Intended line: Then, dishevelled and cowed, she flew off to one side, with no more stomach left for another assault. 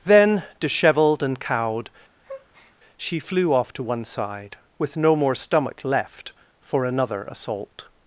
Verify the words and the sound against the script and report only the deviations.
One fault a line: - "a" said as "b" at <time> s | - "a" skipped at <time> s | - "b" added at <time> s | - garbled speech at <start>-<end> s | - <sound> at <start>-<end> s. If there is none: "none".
- breath at 2.2-2.8 s